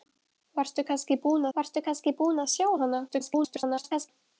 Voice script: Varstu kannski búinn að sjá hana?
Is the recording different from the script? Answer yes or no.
yes